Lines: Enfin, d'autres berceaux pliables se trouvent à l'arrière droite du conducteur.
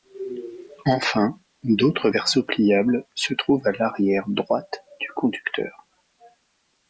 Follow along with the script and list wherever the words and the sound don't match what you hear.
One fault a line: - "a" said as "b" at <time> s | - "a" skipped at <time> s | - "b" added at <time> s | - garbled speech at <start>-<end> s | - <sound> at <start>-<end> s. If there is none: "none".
none